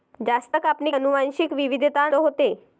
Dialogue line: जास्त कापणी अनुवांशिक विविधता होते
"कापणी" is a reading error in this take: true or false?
false